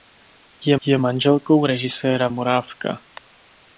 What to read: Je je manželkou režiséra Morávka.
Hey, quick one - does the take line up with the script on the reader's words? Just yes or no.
yes